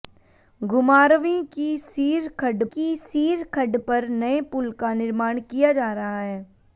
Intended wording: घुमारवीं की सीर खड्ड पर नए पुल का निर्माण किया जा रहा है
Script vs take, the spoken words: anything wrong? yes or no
yes